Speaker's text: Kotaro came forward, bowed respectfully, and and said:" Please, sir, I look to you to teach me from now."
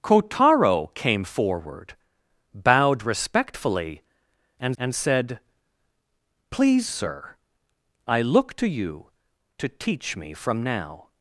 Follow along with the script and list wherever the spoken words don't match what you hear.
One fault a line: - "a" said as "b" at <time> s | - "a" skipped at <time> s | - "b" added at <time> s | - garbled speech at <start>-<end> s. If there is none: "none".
none